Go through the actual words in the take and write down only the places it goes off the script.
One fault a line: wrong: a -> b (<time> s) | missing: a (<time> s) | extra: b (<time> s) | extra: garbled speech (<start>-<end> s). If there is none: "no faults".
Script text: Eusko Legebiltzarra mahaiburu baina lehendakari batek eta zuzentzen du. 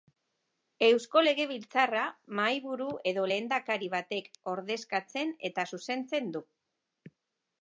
wrong: baina -> edo (3.1 s)
extra: ordezkatzen (4.5 s)